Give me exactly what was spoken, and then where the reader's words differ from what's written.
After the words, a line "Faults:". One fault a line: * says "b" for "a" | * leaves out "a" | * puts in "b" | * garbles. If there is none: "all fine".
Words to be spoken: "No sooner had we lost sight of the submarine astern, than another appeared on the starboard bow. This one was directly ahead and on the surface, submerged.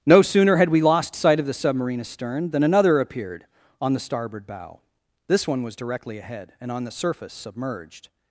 "No sooner had we lost sight of the submarine astern, than another appeared on the starboard bow. This one was directly ahead and on the surface, submerged.
Faults:
all fine